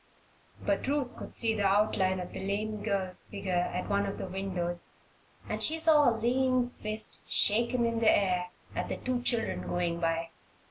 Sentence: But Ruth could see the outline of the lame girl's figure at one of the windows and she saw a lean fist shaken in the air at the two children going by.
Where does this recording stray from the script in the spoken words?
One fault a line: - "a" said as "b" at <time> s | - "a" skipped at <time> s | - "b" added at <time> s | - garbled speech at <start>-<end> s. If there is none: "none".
none